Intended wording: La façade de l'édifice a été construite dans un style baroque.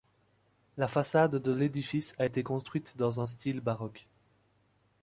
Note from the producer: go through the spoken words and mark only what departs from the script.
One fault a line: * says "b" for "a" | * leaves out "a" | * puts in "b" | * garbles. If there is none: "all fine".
all fine